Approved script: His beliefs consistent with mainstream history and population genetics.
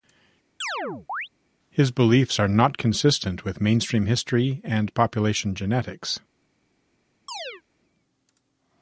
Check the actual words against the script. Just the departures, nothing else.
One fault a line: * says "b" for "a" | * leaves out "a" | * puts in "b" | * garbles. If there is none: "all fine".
* puts in "are not"